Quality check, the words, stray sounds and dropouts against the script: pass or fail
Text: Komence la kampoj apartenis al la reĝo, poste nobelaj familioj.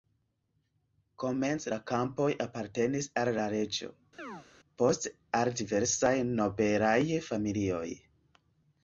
fail